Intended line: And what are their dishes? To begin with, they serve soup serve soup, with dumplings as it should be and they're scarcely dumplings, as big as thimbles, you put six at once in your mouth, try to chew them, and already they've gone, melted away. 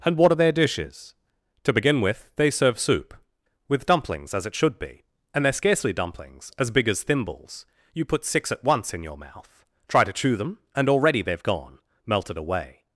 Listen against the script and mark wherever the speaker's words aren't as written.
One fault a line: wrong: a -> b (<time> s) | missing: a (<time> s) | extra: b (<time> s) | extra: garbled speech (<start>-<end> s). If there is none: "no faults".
missing: serve soup (3.1 s)